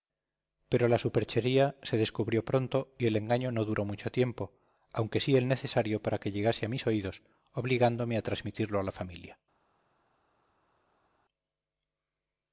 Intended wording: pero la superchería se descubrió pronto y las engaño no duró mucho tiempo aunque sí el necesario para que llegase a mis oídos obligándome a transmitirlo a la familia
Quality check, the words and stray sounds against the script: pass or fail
fail